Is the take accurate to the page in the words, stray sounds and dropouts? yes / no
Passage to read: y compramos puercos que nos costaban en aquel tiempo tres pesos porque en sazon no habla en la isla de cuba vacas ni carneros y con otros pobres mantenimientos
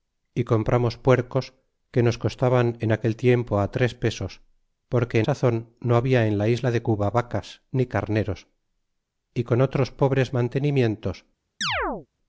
no